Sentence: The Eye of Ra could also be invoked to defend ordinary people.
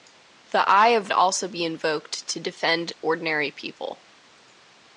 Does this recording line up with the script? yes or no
no